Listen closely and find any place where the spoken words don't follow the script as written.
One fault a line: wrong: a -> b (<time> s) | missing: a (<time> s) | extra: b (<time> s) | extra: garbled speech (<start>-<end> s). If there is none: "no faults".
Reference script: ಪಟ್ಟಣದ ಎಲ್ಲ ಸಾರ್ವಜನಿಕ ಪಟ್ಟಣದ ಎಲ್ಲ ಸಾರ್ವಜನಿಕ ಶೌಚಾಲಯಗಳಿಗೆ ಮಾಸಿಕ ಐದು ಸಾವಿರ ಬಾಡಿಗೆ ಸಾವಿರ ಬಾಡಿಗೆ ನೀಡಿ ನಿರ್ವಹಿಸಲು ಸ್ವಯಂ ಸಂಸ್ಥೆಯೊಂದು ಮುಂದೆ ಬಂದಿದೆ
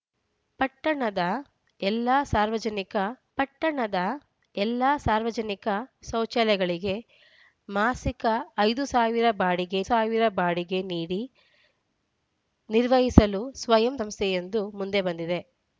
no faults